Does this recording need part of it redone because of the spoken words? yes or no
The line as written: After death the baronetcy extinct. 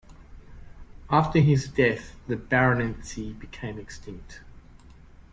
yes